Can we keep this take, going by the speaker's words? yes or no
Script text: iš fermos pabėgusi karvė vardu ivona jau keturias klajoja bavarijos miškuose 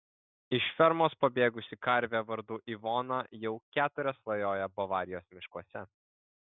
yes